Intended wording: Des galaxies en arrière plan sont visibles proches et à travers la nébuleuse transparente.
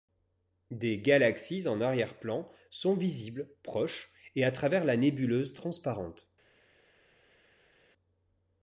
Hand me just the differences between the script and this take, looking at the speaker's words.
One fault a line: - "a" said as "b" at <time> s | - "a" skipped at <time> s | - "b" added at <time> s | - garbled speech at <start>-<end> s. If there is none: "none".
none